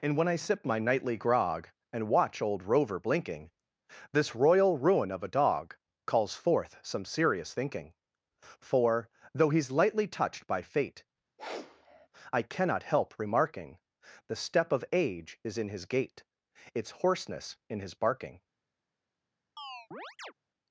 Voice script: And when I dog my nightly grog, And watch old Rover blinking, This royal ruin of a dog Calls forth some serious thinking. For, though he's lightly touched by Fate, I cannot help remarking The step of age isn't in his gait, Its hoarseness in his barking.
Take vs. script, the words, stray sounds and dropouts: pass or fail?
fail